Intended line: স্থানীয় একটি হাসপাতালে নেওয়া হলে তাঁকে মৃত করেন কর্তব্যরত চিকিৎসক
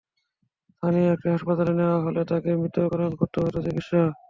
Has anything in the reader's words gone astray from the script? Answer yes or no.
no